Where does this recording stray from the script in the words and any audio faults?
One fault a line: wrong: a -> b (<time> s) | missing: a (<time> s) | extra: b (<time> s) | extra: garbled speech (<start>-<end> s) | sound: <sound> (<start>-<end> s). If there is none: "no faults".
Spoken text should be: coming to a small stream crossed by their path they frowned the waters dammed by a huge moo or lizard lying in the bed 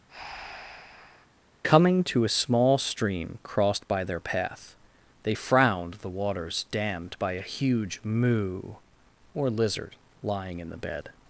sound: breath (0.1-1.3 s)